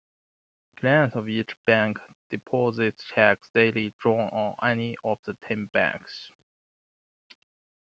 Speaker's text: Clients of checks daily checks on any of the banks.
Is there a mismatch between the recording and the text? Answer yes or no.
yes